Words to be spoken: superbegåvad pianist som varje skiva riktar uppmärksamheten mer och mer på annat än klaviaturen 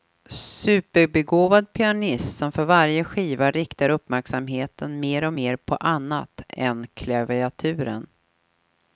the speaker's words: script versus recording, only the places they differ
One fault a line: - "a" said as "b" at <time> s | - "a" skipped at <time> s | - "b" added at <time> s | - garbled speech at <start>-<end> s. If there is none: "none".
- "för" added at 2.5 s